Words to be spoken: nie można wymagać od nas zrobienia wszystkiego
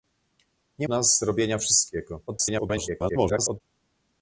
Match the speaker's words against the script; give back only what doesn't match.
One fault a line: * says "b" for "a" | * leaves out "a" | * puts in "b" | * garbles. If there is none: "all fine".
* leaves out "można wymagać od"
* garbles